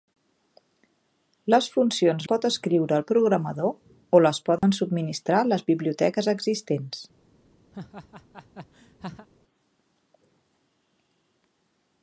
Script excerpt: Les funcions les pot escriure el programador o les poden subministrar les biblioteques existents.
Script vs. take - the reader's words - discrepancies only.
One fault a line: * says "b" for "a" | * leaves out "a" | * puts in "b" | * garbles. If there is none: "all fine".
* leaves out "les"